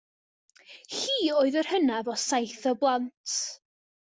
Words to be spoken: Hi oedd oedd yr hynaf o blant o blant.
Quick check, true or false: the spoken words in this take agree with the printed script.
false